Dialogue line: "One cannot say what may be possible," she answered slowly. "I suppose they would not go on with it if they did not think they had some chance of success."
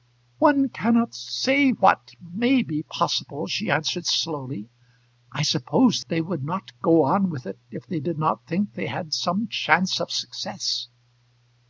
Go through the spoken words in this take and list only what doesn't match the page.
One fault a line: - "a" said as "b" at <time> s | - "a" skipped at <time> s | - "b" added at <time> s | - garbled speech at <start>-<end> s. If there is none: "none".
none